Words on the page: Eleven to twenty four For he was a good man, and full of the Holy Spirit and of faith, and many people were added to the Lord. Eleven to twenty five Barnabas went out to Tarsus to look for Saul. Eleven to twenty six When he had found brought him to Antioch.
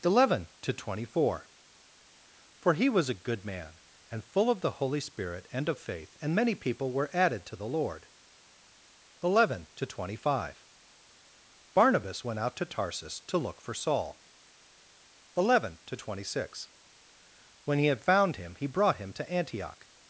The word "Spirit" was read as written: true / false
true